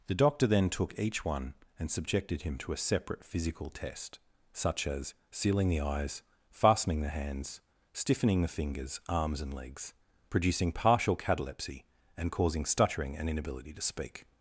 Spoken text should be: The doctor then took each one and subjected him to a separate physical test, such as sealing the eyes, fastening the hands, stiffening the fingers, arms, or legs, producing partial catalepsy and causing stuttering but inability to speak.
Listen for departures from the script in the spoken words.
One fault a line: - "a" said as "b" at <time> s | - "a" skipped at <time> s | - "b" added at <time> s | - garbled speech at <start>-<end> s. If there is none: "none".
- "or" said as "and" at 9.4 s
- "but" said as "and" at 13.2 s